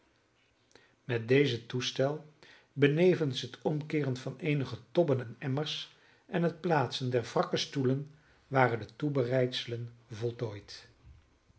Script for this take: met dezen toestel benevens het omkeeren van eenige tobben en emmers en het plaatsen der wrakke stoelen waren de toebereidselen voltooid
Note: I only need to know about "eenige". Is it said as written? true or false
true